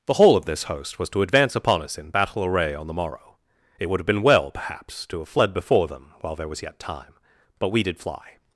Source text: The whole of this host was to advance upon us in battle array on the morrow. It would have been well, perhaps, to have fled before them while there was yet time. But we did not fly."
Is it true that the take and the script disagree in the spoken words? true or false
true